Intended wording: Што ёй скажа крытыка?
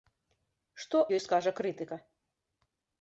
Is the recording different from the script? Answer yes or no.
no